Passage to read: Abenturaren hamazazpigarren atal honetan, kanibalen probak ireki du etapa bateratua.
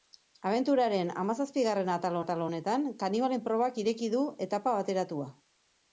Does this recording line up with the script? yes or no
no